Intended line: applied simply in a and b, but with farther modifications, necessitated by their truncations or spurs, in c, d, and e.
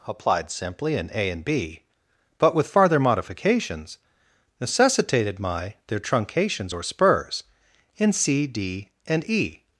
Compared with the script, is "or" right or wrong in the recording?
right